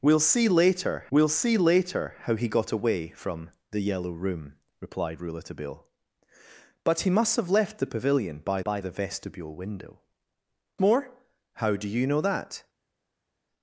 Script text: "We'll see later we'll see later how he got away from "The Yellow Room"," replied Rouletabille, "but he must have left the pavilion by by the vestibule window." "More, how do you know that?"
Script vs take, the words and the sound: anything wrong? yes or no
no